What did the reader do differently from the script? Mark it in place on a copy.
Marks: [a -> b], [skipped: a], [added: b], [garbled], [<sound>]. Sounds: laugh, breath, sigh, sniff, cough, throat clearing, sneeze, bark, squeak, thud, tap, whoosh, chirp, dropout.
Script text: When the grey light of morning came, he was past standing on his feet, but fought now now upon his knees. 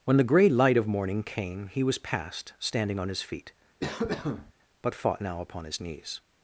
When the grey light of morning came, he was past standing on his feet, [cough] but fought now [skipped: now] upon his knees.